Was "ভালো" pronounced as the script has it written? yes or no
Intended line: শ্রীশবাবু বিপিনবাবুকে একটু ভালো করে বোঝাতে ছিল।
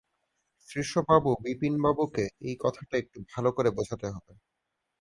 yes